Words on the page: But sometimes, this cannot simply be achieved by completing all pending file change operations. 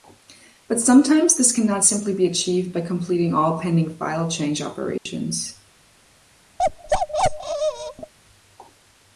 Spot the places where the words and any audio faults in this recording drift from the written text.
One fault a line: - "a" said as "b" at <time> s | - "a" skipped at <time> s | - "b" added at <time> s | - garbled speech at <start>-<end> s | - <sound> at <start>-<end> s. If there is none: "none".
- dropout at 5.0-5.1 s
- bark at 6.6-8.1 s